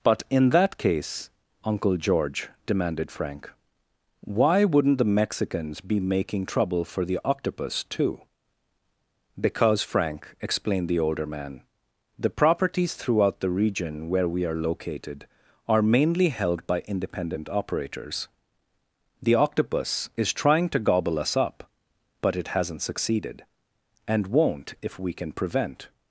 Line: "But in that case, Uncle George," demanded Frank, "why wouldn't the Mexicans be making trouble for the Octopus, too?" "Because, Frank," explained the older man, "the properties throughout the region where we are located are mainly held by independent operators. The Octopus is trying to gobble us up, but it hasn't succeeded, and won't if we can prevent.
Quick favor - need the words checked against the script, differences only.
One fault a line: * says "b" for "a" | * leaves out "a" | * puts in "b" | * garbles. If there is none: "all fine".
all fine